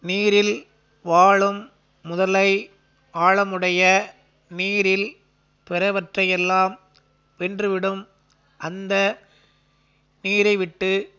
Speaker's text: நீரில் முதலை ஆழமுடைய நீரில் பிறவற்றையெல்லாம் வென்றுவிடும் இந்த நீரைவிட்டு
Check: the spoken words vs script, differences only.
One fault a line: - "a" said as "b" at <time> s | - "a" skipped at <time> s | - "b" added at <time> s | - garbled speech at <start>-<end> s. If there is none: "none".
- "வாழும்" added at 1.0 s
- "இந்த" said as "அந்த" at 8.6 s